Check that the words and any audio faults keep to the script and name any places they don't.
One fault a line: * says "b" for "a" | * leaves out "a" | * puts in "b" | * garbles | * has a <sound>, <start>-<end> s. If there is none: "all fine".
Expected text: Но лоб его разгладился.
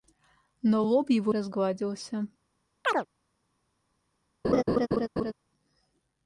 * has a chirp, 2.8-3.1 s
* has a laugh, 4.4-5.3 s